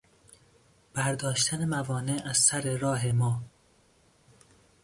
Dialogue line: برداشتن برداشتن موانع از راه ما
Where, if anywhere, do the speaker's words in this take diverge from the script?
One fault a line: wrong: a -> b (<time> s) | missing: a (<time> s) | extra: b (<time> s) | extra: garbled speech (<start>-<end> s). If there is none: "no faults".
missing: برداشتن (1.6 s)
extra: سر (2.4 s)